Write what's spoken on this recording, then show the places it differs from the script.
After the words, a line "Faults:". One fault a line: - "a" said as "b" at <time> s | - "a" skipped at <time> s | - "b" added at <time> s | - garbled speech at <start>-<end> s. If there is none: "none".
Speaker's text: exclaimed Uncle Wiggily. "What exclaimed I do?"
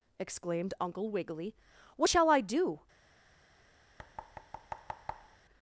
exclaimed Uncle Wiggily. "What shall I do?"
Faults:
- "exclaimed" said as "shall" at 2.0 s